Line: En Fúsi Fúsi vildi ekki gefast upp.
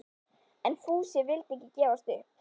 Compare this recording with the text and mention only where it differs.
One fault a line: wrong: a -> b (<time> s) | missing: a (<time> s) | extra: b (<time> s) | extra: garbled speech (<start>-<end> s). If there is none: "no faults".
missing: Fúsi (1.2 s)